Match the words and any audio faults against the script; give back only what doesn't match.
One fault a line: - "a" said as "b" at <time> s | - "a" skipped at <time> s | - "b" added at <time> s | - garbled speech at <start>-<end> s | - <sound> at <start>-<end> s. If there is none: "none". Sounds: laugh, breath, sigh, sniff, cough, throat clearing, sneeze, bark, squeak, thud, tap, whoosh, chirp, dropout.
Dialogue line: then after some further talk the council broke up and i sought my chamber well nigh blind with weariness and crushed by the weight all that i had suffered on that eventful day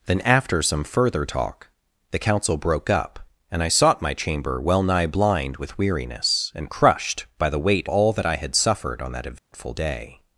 - dropout at 9.4-9.5 s